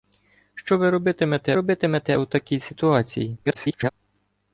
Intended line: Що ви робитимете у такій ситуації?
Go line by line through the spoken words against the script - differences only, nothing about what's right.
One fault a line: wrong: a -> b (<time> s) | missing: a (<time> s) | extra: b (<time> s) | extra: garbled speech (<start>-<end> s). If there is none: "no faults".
extra: робитимете (1.5 s)
extra: garbled speech (3.4-3.9 s)